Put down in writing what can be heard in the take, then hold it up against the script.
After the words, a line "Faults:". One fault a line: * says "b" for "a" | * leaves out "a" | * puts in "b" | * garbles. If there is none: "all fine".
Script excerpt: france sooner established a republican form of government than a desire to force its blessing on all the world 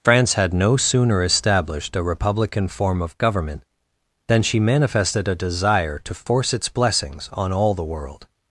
france had no sooner established a republican form of government than she manifested a desire to force its blessings on all the world
Faults:
* puts in "had no"
* puts in "she manifested"
* says "blessings" for "blessing"